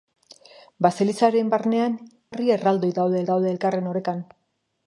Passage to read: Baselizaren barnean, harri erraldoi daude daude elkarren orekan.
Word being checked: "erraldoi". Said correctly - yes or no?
yes